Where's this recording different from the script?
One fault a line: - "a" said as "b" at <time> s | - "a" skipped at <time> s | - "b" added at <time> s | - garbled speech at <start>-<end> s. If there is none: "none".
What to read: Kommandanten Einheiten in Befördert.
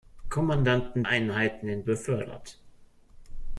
none